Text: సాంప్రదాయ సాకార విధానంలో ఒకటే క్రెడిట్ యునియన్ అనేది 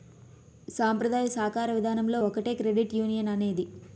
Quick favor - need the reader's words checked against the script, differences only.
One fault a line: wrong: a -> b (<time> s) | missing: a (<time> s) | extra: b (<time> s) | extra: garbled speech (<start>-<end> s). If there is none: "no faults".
no faults